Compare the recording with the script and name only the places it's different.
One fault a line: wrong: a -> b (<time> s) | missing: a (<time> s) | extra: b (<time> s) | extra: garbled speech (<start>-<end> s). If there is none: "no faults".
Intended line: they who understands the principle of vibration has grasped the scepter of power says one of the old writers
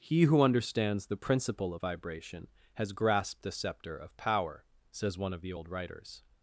wrong: they -> he (0.0 s)